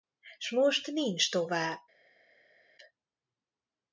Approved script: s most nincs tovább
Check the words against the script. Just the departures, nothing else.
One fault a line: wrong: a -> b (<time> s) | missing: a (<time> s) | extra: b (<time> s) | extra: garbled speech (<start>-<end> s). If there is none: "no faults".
no faults